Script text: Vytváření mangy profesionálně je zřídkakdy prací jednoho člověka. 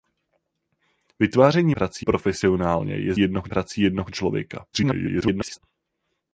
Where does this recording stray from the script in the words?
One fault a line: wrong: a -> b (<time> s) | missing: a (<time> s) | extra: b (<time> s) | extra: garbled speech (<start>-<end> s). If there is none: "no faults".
wrong: mangy -> prací (1.7 s)
wrong: zřídkakdy -> jednoho (3.2 s)
extra: garbled speech (4.7-5.6 s)